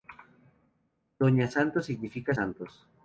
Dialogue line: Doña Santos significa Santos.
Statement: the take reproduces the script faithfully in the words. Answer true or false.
true